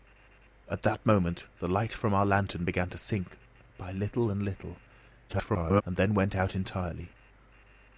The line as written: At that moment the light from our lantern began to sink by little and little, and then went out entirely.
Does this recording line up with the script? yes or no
no